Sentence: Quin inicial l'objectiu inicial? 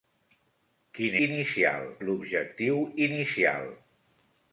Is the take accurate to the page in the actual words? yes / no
yes